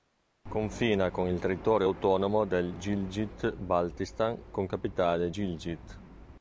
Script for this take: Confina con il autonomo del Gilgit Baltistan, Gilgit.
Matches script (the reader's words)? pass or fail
fail